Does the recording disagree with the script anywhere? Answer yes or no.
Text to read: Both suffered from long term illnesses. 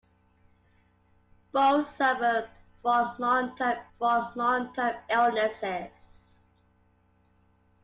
yes